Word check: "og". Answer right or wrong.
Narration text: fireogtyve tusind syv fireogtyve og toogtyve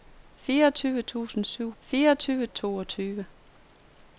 right